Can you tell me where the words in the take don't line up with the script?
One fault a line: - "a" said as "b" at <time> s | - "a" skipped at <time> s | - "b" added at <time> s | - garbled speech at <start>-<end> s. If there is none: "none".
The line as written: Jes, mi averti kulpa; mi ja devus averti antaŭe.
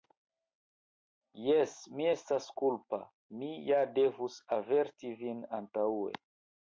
- "averti" said as "estas" at 2.1 s
- "vin" added at 5.3 s